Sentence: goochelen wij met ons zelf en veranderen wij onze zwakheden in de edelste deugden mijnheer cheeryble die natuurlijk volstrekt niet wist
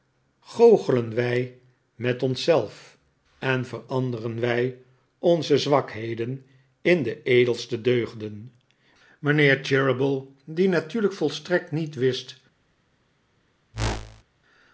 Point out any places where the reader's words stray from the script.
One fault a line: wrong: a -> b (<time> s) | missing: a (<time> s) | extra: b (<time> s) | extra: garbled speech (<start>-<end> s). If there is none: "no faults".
no faults